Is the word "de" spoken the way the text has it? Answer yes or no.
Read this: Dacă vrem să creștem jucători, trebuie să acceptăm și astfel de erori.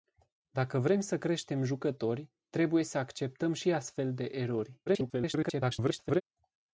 yes